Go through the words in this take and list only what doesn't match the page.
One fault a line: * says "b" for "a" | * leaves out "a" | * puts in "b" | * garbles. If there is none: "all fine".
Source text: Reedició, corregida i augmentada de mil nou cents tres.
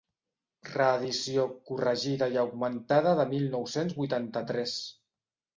* puts in "vuitanta"